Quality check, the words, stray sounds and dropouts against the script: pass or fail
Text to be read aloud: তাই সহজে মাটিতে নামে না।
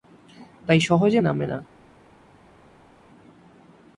fail